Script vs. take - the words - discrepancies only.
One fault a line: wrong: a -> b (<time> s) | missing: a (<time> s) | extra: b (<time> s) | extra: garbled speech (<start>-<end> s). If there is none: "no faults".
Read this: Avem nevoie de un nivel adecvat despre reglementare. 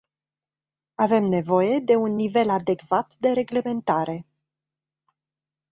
wrong: despre -> de (3.2 s)